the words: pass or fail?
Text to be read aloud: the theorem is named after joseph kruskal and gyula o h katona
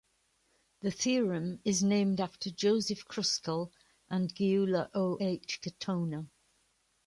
pass